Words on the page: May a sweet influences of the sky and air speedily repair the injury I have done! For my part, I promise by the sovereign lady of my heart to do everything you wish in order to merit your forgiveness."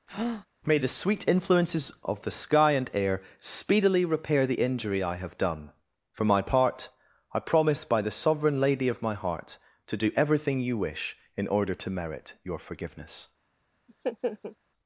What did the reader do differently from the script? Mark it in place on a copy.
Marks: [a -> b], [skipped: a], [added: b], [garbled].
May [a -> the] sweet influences of the sky and air speedily repair the injury I have done! For my part, I promise by the sovereign lady of my heart to do everything you wish in order to merit your forgiveness."